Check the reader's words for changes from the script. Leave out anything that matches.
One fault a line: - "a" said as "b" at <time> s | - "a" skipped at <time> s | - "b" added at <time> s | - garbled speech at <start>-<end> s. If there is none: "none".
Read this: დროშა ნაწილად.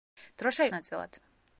none